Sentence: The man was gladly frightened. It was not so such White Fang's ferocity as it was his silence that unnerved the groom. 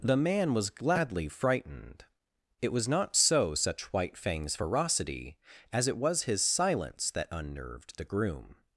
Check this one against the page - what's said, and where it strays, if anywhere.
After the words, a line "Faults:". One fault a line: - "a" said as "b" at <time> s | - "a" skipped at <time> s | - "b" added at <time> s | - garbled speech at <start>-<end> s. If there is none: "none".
The man was gladly frightened. It was not so such White Fang's ferocity as it was his silence that unnerved the groom.
Faults:
none